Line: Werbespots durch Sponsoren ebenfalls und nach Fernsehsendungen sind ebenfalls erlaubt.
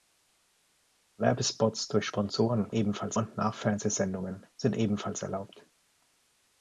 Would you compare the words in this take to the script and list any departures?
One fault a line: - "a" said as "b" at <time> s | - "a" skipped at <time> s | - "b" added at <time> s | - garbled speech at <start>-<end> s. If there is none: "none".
none